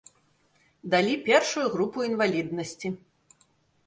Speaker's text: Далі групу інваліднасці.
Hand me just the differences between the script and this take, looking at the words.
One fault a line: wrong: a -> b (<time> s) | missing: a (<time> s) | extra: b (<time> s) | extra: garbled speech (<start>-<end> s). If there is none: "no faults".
extra: першую (1.2 s)